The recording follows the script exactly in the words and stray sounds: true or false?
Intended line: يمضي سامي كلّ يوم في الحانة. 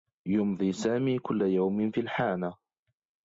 true